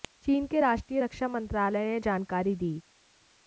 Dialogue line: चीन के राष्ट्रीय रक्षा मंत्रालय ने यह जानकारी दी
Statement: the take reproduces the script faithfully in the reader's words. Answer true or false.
true